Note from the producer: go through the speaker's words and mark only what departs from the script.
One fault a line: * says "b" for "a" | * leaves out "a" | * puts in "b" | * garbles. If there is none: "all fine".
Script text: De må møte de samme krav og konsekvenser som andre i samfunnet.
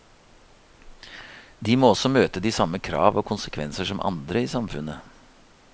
* puts in "også"